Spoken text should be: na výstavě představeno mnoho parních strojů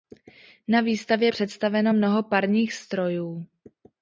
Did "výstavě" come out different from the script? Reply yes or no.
no